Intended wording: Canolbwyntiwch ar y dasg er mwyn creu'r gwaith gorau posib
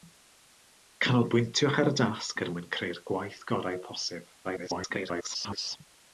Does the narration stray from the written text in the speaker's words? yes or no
yes